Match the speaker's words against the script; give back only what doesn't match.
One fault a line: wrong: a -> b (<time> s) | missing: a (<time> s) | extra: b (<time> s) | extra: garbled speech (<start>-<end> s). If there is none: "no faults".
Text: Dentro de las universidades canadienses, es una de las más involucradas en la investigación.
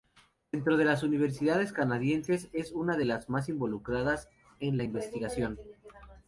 no faults